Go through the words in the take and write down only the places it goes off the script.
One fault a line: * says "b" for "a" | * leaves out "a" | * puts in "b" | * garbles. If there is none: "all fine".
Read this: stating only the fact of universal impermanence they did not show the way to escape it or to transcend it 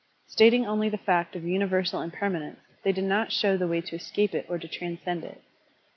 all fine